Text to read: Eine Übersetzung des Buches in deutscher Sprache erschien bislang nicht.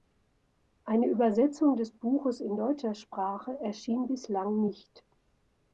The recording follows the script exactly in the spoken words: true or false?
true